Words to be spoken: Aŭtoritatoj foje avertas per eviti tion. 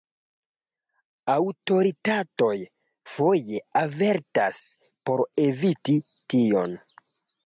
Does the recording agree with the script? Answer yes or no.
no